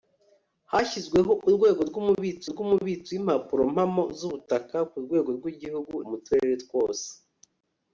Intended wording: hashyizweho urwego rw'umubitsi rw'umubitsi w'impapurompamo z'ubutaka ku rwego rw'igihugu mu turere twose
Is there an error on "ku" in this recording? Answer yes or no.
no